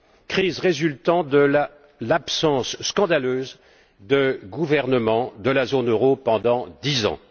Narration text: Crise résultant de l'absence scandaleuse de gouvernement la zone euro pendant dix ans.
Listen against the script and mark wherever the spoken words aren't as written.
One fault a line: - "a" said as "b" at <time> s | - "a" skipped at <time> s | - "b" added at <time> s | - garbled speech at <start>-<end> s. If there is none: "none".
- "de" added at 5.4 s